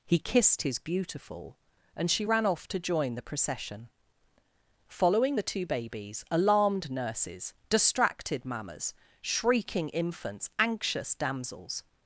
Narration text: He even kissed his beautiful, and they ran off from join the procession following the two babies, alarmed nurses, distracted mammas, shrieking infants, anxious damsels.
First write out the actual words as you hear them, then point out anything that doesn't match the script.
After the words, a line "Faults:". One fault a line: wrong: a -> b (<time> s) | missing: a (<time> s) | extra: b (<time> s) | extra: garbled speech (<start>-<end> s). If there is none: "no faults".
He kissed his beautiful, and she ran off to join the procession following the two babies, alarmed nurses, distracted mammas, shrieking infants, anxious damsels.
Faults:
missing: even (0.2 s)
wrong: they -> she (2.1 s)
wrong: from -> to (2.7 s)